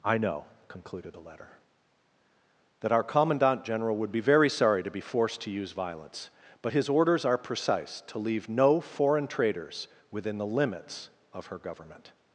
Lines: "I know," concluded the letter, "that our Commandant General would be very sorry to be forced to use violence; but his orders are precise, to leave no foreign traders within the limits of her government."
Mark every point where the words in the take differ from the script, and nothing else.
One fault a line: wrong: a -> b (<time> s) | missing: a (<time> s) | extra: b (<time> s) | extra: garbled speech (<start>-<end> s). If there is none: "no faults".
no faults